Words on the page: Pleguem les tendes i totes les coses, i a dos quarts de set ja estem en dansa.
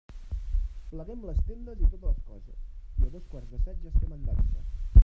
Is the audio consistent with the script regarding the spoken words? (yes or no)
yes